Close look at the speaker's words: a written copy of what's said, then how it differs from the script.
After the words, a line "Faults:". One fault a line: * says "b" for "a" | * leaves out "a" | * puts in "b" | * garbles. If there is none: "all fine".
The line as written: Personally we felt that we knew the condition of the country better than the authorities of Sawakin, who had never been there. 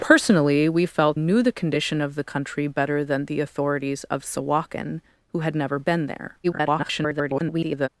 Personally we felt knew the condition of the country better than the authorities of Sawakin, who had never been there. [garbled]
Faults:
* leaves out "that we"
* garbles